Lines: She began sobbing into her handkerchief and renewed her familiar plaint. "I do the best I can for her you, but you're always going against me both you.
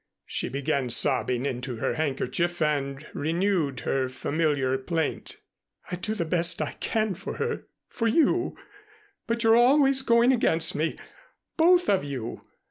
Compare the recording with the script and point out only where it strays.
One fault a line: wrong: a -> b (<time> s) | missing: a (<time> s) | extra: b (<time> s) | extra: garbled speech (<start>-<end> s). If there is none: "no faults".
extra: for (7.9 s)
extra: of (11.9 s)